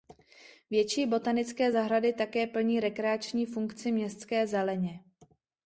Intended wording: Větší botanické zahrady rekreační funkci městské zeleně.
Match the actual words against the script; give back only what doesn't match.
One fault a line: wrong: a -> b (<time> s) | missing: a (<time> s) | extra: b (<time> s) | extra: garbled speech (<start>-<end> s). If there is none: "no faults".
extra: také plní (2.1 s)